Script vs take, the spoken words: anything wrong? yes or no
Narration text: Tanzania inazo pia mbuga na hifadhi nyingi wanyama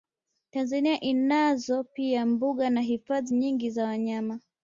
yes